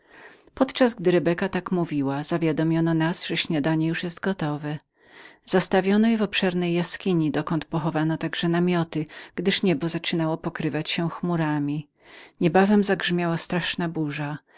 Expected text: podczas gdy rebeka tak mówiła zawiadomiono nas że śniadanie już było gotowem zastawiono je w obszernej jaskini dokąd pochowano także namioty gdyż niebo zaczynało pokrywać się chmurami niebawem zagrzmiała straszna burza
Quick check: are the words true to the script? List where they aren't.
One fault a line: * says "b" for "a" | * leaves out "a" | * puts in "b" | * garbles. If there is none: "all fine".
all fine